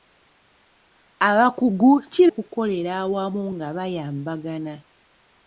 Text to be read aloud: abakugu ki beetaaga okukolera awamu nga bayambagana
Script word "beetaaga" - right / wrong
wrong